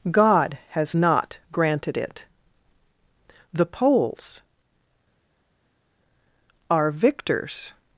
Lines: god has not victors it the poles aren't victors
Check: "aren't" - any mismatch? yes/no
yes